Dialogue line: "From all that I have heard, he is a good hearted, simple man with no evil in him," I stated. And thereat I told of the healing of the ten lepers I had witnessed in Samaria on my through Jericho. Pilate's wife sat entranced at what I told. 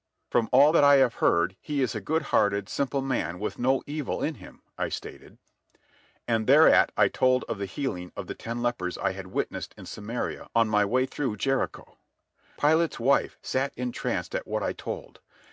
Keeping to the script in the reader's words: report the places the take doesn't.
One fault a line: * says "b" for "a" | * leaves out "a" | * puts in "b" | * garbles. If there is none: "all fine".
* puts in "way"